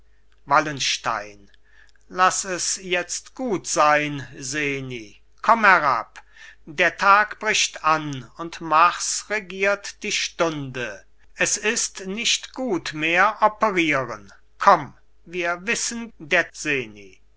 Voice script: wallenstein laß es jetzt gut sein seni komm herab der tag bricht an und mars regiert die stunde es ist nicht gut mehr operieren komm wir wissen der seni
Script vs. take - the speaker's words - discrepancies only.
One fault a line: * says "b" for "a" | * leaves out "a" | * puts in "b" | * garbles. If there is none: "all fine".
all fine